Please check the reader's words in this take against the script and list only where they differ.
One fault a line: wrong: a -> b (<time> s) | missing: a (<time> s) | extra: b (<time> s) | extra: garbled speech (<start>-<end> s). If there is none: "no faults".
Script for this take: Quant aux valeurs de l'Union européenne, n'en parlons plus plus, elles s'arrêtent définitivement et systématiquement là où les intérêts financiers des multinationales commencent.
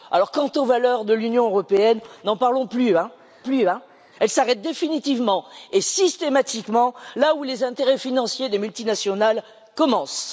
no faults